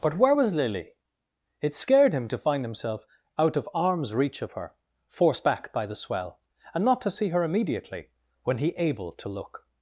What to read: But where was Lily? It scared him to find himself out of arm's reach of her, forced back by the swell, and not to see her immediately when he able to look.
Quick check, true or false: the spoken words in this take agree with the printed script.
true